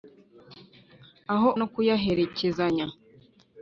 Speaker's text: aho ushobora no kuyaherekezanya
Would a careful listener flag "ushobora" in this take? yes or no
yes